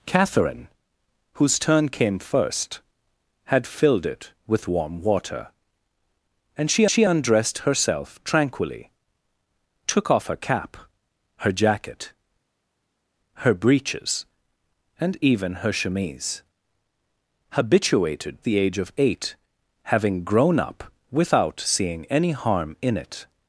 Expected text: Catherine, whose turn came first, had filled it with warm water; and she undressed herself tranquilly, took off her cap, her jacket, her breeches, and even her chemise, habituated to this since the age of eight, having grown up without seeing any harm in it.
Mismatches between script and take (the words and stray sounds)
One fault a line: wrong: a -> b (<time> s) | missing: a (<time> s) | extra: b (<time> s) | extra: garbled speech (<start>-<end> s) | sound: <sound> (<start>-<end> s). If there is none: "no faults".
extra: she (6.9 s)
missing: to this since (18.4 s)